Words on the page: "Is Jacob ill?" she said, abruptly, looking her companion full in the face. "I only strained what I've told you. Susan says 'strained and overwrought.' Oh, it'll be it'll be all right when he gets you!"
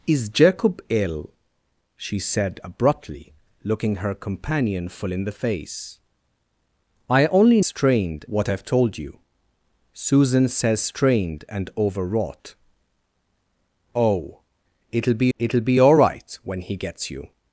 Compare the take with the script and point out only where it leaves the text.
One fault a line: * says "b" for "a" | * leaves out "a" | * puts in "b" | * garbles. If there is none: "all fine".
all fine